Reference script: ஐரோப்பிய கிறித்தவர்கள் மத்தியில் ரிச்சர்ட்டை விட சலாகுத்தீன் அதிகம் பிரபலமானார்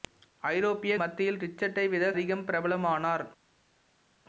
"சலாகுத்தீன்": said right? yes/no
no